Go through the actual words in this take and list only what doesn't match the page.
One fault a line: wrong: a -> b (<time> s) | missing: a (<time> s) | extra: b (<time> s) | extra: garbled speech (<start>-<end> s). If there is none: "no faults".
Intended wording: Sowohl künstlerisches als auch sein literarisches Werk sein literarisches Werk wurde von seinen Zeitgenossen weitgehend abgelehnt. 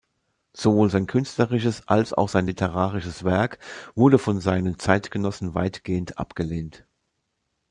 extra: sein (0.9 s)
missing: sein literarisches Werk (3.6 s)